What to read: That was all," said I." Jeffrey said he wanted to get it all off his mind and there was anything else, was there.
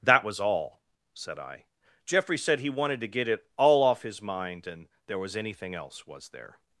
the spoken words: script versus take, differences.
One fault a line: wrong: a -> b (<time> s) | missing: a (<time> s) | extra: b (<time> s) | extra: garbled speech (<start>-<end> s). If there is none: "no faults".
no faults